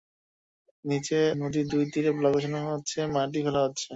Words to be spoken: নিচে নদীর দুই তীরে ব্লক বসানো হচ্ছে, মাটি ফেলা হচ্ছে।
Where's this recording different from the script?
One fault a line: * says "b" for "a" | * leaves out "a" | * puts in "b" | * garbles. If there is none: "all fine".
all fine